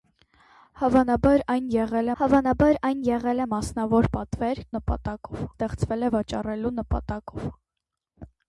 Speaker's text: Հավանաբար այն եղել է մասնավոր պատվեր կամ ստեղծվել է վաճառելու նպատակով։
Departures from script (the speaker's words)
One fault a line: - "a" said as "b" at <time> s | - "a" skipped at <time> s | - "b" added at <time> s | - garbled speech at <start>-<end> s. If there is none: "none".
- "հավանաբար այն եղել" added at 2.2 s
- "կամ" said as "նպատակով" at 4.7 s